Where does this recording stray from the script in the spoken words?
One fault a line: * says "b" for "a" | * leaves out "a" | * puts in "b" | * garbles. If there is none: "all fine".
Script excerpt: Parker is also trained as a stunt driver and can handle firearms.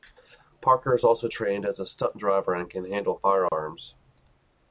all fine